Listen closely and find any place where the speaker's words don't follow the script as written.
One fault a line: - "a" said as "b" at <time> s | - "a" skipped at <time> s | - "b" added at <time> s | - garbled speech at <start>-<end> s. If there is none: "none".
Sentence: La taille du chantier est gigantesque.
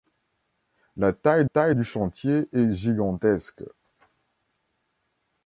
- "taille" added at 1.4 s